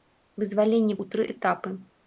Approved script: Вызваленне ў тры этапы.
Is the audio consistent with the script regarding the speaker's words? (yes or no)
yes